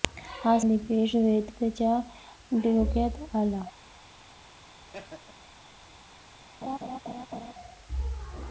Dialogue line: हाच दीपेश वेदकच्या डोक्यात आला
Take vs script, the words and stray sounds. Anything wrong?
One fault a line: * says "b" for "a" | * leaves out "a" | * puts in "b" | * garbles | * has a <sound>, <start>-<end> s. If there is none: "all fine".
* has a laugh, 4.8-5.5 s
* has a laugh, 6.6-7.5 s